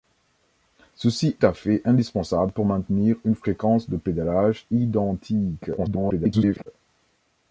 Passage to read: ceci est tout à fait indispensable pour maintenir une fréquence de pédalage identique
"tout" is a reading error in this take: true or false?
true